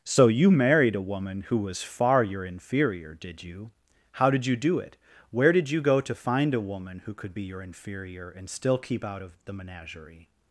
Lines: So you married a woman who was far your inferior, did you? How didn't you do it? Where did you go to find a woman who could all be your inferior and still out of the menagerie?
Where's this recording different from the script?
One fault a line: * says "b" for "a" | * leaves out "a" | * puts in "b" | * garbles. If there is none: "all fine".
* says "did" for "didn't"
* leaves out "all"
* puts in "keep"